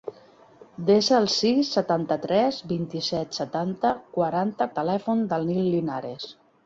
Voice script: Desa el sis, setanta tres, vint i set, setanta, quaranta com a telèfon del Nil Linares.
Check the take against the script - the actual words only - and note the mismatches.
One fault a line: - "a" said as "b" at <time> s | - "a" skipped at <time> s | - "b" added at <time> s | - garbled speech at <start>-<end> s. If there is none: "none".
- "com" skipped at 4.7 s